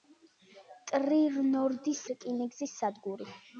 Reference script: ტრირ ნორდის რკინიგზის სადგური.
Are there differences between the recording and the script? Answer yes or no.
no